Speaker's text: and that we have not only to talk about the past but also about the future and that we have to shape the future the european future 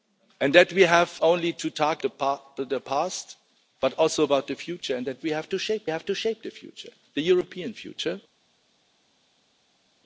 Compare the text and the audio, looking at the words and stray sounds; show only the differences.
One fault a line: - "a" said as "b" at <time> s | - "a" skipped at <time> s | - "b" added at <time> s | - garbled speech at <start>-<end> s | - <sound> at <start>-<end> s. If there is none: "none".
- "not" skipped at 1.1 s
- "about" skipped at 2.0 s
- "have to shape" added at 5.9 s